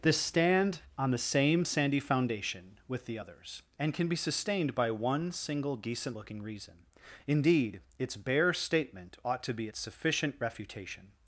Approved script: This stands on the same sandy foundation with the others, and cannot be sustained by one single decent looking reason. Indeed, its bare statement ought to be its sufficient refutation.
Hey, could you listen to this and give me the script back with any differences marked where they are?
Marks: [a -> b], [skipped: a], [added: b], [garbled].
This [stands -> stand] on the same sandy foundation with the others, and [cannot -> can] be sustained by one single decent looking reason. Indeed, its bare statement ought to be its sufficient refutation.